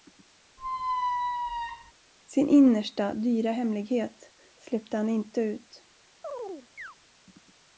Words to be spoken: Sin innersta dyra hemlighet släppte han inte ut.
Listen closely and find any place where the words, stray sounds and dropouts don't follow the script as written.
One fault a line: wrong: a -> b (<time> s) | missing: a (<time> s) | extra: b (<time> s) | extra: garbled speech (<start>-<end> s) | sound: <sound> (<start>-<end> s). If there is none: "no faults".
sound: squeak (0.6-1.9 s)
sound: chirp (6.2-7.0 s)